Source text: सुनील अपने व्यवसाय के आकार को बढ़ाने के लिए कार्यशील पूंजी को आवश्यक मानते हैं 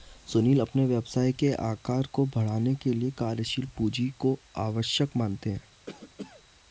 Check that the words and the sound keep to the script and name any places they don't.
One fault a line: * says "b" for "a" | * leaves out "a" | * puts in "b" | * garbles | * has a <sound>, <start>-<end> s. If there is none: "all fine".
* has a cough, 5.9-6.4 s